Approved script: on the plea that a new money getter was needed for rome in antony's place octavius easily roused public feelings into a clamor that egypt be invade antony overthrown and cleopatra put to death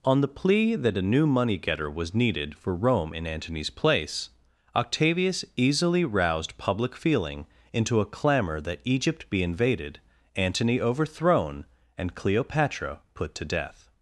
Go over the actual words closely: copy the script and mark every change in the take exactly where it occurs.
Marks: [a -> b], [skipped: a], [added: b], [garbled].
on the plea that a new money getter was needed for rome in antony's place octavius easily roused public [feelings -> feeling] into a clamor that egypt be [invade -> invaded] antony overthrown and cleopatra put to death